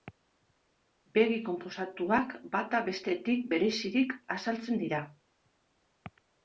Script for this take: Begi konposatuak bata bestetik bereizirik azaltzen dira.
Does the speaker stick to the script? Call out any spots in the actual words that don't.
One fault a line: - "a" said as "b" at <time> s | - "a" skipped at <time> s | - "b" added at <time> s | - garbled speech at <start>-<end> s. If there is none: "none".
none